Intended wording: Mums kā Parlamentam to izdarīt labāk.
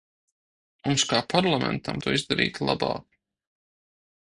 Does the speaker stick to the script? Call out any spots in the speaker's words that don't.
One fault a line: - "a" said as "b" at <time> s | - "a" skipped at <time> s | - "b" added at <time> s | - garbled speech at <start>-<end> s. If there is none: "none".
none